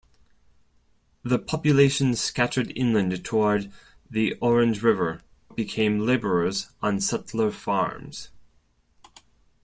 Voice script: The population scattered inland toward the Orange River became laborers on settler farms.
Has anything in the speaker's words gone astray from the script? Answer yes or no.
no